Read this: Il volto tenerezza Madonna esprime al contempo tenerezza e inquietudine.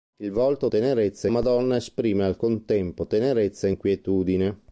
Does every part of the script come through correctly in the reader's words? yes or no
yes